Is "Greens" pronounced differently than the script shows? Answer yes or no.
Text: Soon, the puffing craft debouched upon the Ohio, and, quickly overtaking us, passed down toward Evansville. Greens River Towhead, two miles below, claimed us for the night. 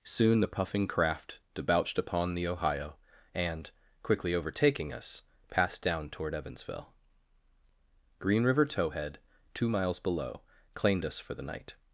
yes